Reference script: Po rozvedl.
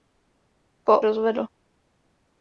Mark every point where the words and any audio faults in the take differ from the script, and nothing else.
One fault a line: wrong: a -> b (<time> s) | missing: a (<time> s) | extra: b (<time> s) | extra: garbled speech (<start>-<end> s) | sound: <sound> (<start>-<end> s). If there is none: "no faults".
no faults